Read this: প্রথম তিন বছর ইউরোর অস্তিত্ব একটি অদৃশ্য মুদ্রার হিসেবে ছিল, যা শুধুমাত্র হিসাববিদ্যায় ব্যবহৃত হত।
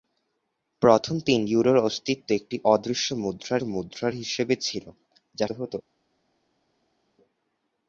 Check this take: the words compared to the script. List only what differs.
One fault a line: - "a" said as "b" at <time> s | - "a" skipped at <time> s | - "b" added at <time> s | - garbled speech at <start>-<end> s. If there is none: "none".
- "বছর" skipped at 1.4 s
- "মুদ্রার" added at 3.6 s
- "শুধুমাত্র হিসাববিদ্যায় ব্যবহৃত" skipped at 5.5 s